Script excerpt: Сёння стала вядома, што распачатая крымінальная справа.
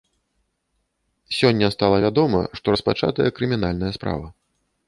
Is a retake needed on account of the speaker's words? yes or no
no